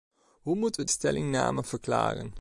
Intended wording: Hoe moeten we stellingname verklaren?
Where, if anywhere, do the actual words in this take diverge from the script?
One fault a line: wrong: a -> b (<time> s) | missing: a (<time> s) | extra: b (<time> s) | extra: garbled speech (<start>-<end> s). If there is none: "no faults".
no faults